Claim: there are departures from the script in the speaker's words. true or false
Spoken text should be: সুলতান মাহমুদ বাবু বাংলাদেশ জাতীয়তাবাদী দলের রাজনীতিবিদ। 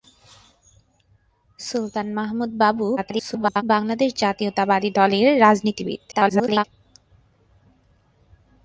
true